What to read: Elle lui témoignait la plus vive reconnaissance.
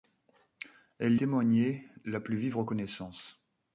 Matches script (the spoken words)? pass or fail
fail